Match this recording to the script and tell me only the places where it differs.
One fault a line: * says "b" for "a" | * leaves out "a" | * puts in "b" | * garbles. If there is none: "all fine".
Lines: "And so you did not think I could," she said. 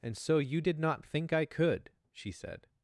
all fine